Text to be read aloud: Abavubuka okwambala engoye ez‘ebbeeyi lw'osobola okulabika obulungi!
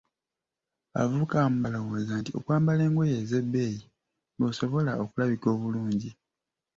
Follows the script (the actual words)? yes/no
no